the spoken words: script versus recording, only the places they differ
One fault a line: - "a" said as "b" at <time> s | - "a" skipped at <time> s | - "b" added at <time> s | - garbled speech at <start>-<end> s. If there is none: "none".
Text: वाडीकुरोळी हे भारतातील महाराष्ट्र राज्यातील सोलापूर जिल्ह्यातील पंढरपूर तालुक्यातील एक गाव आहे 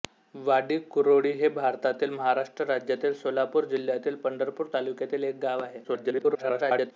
- garbled speech at 5.8-6.9 s